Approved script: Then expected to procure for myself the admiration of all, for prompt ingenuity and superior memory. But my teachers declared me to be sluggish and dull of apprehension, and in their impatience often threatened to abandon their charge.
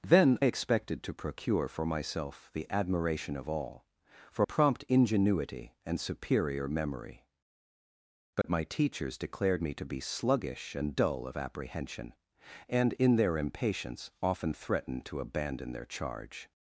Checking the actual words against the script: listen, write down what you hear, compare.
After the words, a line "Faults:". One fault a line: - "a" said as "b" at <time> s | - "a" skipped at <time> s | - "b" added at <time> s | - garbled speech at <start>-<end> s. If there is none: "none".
Then expected to procure for myself the admiration of all, for prompt ingenuity and superior memory. But my teachers declared me to be sluggish and dull of apprehension, and in their impatience often threatened to abandon their charge.
Faults:
none